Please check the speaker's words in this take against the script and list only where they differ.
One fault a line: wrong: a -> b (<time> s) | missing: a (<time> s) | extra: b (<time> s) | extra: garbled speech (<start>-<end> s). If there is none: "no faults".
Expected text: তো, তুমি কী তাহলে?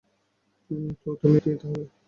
no faults